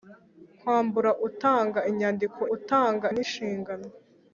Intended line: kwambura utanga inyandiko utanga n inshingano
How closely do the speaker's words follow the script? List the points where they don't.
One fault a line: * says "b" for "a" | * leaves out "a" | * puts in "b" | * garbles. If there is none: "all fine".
all fine